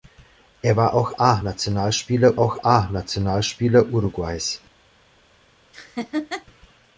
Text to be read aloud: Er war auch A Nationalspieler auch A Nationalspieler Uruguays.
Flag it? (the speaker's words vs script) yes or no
no